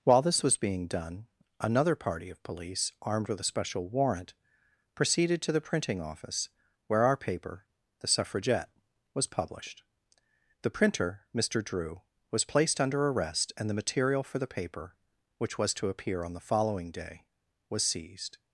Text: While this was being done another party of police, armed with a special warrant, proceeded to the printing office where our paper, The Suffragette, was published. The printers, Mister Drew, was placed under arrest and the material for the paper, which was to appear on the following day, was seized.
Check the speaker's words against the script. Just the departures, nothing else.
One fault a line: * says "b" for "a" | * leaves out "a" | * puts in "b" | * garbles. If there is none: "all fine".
* says "printer" for "printers"